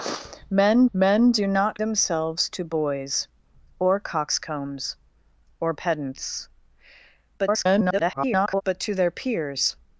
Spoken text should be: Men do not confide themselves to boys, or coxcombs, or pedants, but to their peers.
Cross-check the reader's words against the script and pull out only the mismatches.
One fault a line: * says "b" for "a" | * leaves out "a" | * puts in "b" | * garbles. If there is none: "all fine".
* puts in "men"
* leaves out "confide"
* garbles